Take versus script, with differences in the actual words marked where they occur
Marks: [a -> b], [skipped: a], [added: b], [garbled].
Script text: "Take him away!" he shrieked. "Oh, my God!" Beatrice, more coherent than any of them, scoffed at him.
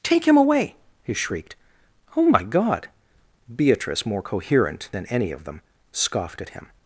"Take him away!" he shrieked. "Oh, my God!" Beatrice, more coherent than any of them, scoffed at him.